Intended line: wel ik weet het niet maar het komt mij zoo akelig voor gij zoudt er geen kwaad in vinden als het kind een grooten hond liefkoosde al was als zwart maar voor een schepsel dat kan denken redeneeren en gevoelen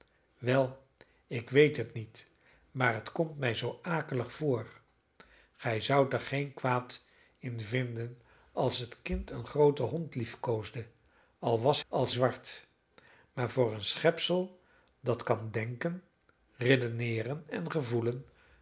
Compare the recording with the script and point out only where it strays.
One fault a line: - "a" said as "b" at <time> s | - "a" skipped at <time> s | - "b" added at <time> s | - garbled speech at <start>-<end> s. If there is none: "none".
none